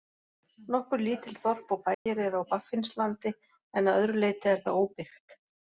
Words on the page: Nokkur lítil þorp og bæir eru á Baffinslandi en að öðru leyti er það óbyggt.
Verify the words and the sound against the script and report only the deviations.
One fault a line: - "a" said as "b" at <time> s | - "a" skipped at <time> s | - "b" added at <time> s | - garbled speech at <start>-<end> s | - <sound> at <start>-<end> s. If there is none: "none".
- dropout at 1.9-2.1 s